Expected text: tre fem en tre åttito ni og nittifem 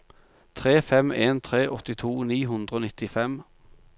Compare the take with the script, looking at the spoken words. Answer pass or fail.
fail